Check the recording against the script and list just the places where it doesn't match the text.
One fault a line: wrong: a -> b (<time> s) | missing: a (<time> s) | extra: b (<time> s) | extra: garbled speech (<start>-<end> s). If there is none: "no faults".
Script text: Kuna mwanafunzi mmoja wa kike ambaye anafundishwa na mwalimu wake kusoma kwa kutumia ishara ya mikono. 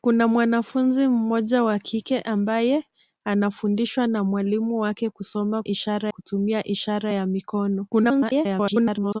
wrong: kwa -> ishara (5.7 s)
extra: garbled speech (7.9-9.2 s)